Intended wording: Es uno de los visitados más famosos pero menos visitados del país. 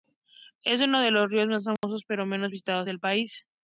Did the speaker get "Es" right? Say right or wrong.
right